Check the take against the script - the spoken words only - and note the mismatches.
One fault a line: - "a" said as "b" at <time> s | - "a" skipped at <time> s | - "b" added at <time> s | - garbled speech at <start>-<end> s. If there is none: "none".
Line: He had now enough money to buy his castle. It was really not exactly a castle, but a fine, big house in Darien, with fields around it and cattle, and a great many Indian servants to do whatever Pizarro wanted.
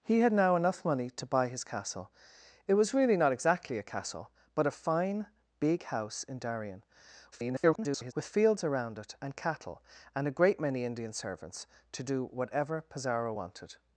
- garbled speech at 7.3-8.1 s